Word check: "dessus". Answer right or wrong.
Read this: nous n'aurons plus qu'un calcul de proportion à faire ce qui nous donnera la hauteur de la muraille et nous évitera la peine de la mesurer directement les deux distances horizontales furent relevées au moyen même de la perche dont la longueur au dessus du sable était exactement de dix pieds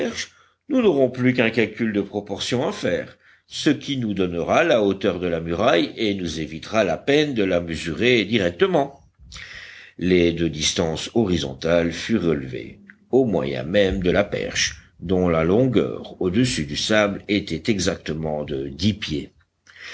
right